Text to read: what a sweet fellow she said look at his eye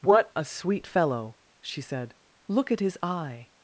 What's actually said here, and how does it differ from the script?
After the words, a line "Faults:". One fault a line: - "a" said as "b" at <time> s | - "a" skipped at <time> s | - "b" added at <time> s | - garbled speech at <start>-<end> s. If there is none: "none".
what a sweet fellow she said look at his eye
Faults:
none